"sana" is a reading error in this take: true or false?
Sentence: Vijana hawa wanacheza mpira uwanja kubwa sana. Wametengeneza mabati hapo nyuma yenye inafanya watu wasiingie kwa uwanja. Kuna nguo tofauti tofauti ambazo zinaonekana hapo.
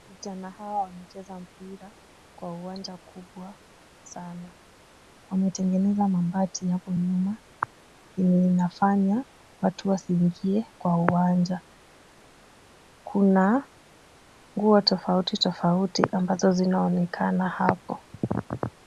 false